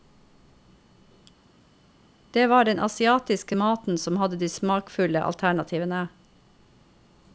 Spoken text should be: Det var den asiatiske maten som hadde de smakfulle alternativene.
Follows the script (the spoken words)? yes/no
yes